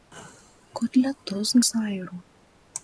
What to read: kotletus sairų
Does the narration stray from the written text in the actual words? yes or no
no